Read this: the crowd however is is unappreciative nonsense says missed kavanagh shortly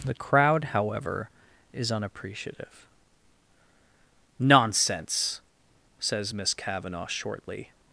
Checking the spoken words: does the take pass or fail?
fail